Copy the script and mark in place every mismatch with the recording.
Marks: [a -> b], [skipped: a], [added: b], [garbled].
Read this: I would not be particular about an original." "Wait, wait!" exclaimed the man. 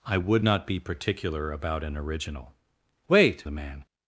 I would not be particular about an original." "Wait, [skipped: wait!" exclaimed] the man.